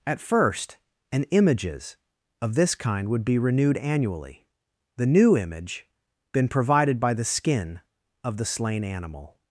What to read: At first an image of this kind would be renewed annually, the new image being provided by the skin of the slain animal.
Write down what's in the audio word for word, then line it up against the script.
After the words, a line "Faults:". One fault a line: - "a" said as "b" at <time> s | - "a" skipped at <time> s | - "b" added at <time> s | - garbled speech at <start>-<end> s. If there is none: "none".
At first an images of this kind would be renewed annually, the new image been provided by the skin of the slain animal.
Faults:
- "image" said as "images" at 1.2 s
- "being" said as "been" at 6.3 s